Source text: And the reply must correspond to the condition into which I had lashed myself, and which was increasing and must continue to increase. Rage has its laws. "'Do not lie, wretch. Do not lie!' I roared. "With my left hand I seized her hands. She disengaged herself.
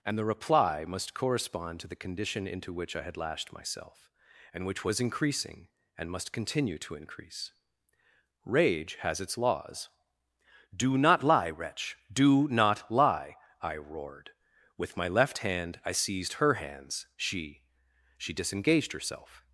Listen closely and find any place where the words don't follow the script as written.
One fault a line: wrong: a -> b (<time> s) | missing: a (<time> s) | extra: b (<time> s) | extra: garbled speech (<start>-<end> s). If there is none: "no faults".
extra: She (18.2 s)